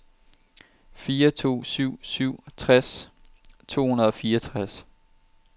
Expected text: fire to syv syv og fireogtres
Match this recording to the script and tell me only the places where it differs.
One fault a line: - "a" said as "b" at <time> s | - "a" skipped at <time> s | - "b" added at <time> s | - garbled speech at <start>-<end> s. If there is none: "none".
- "tres to hundrede" added at 2.6 s